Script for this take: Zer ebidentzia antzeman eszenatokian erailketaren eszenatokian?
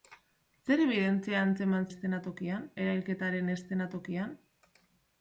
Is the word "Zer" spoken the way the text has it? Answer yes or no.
yes